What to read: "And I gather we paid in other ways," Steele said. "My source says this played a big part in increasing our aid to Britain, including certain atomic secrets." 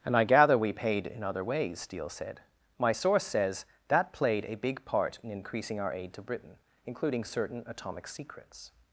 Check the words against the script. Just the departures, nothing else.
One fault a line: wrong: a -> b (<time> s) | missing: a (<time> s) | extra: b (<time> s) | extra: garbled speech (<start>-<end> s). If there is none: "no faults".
wrong: this -> that (3.9 s)